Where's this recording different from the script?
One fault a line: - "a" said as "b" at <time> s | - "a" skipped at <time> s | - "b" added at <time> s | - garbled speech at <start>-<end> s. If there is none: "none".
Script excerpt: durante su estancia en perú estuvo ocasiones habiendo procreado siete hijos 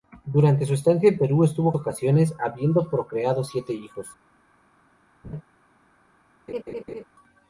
none